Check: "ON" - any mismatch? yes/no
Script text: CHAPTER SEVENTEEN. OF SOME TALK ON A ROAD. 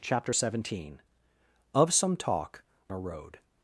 yes